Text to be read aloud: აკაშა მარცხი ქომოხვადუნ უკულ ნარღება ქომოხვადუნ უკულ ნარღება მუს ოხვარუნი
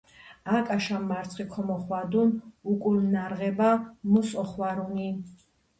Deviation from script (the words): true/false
true